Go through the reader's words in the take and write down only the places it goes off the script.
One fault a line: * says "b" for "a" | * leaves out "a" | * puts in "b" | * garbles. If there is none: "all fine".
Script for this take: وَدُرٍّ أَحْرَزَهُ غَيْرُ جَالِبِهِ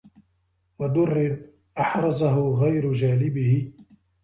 all fine